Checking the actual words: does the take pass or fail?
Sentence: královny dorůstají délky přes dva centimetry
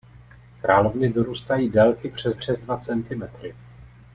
fail